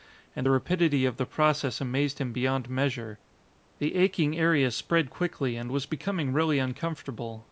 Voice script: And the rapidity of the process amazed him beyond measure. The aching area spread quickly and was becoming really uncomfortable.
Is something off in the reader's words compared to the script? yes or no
no